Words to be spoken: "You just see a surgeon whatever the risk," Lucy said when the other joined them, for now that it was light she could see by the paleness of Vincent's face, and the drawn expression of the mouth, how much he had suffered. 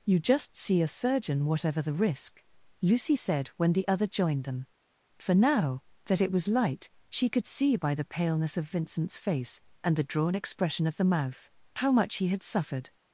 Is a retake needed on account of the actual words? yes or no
no